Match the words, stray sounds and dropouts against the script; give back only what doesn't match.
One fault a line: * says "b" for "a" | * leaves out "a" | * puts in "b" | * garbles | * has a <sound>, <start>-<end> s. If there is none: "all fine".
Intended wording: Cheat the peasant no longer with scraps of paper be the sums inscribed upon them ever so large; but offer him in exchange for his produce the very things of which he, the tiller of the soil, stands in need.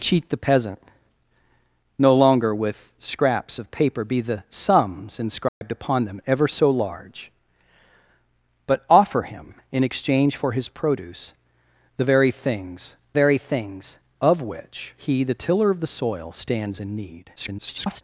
* has a dropout, 5.5-5.6 s
* puts in "very things"
* garbles